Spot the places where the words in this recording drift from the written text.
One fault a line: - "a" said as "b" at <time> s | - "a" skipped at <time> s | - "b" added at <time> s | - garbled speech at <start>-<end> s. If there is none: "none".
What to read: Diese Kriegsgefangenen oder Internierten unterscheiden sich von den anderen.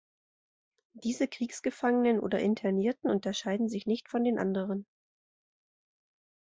- "nicht" added at 3.9 s